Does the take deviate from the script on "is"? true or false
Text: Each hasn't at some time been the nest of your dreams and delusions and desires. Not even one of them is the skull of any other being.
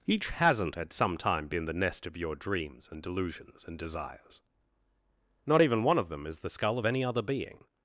false